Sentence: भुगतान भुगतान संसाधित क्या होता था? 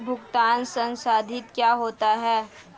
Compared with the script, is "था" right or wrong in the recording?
wrong